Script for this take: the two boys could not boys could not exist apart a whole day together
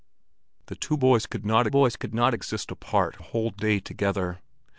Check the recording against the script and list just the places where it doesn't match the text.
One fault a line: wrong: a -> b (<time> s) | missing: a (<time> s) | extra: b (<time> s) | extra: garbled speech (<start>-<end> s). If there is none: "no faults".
no faults